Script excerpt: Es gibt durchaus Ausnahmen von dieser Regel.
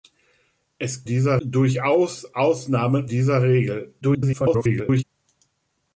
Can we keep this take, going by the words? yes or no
no